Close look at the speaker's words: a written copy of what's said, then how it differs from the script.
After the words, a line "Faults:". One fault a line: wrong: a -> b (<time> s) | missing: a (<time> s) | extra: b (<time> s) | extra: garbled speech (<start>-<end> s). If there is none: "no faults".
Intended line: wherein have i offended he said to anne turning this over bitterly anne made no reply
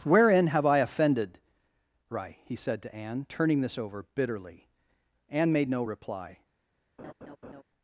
wherein have i offended right he said to anne turning this over bitterly anne made no reply
Faults:
extra: right (2.1 s)